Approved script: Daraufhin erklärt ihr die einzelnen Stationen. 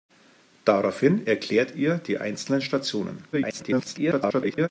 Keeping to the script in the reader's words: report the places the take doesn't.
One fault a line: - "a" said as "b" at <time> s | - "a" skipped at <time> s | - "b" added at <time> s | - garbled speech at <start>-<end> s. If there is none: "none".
- garbled speech at 3.3-4.7 s